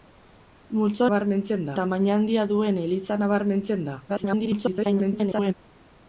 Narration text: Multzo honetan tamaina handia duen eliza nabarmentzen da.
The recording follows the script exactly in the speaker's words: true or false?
false